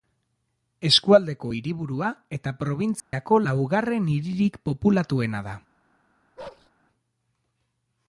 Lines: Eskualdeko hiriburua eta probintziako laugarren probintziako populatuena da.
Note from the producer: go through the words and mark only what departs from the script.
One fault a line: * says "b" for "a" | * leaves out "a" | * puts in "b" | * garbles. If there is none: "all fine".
* says "hiririk" for "probintziako"